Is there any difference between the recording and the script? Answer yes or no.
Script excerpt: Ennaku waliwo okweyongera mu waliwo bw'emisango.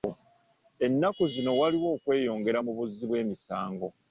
yes